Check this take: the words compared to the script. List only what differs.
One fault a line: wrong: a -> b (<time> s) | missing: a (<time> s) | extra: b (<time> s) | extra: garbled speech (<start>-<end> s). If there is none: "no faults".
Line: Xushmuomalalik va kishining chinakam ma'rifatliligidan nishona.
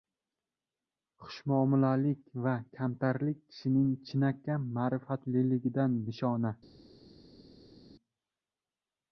extra: kamtarlik (2.8 s)